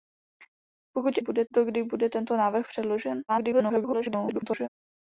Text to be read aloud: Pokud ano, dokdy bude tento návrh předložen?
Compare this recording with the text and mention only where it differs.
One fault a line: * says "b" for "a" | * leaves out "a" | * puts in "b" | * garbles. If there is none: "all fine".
* says "bude" for "ano"
* garbles